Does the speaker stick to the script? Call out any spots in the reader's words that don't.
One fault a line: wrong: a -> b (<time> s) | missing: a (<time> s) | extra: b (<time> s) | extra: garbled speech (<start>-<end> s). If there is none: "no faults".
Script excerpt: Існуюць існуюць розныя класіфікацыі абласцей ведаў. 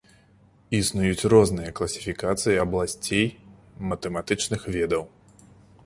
missing: існуюць (1.3 s)
extra: матэматычных (3.9 s)